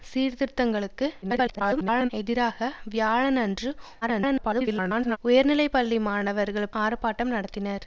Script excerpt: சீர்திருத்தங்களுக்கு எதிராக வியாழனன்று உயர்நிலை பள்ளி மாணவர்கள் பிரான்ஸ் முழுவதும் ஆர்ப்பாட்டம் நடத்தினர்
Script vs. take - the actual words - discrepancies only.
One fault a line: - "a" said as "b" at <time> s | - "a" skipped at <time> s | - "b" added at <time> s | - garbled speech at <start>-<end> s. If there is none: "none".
- garbled speech at 1.2-2.1 s
- garbled speech at 4.0-5.2 s
- "பிரான்ஸ் முழுவதும்" skipped at 6.7 s